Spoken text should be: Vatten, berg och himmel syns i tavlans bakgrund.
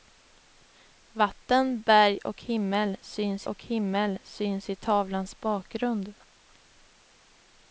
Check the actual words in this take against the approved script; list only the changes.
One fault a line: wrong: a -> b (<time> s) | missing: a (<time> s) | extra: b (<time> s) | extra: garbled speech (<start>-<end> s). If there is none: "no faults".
extra: och himmel syns (3.4 s)